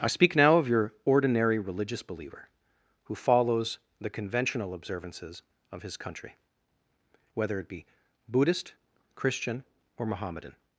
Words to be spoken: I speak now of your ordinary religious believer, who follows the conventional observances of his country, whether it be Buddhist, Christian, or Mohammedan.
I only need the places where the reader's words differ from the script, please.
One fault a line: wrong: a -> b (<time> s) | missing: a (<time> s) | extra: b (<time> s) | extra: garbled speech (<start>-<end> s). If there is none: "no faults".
no faults